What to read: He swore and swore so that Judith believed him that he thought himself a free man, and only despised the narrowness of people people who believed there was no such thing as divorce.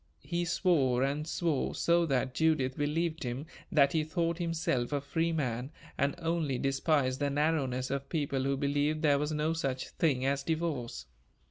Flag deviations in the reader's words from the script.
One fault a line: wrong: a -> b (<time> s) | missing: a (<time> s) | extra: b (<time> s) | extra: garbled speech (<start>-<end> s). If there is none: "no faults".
missing: people (8.4 s)